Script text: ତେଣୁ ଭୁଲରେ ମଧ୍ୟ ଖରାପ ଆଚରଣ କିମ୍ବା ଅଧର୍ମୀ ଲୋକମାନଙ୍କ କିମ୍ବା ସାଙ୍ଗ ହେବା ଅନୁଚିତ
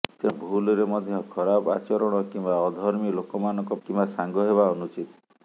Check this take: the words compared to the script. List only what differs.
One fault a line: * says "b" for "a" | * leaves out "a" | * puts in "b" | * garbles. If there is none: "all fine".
all fine